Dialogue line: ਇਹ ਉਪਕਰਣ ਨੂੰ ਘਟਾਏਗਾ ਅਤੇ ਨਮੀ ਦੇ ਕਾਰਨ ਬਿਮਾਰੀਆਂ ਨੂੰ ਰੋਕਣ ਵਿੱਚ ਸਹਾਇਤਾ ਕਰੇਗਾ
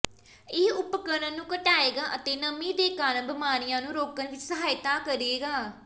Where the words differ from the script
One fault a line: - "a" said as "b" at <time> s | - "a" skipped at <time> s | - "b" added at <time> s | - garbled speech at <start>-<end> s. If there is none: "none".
none